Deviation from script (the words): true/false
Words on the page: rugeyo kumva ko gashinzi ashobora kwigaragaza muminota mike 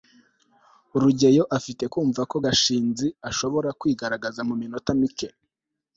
true